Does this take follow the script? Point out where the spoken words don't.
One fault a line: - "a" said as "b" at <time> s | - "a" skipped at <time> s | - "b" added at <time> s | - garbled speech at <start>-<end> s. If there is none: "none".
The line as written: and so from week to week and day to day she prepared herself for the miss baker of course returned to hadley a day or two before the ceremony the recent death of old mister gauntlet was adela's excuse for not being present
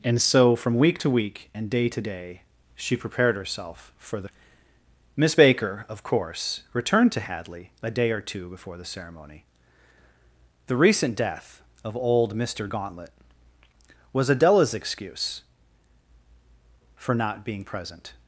none